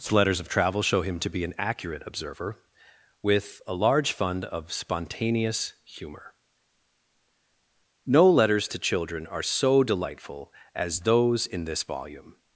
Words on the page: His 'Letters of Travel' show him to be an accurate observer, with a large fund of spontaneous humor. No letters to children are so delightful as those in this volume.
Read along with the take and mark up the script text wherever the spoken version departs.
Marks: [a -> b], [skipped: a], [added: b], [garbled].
His 'Letters of Travel' show him to be an accurate observer, with a large fund of spontaneous humor. No letters to children are so delightful as those in this volume.